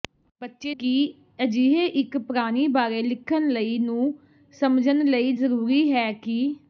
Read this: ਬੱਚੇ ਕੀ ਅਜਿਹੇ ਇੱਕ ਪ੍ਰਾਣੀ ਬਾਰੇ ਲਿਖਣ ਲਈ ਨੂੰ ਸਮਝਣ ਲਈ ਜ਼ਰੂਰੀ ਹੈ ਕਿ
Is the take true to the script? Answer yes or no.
yes